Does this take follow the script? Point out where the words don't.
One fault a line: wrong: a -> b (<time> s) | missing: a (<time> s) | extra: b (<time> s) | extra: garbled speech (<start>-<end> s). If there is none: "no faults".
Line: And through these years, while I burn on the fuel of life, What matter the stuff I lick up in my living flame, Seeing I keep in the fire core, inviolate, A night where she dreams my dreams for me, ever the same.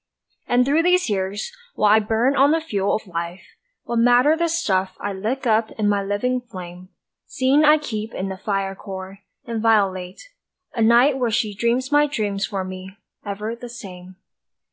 no faults